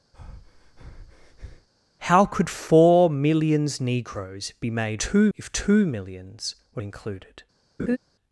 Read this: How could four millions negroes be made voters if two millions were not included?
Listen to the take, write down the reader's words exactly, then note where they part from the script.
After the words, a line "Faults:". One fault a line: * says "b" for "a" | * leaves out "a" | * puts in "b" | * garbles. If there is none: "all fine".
How could four millions negroes be made two if two millions were included?
Faults:
* says "two" for "voters"
* leaves out "not"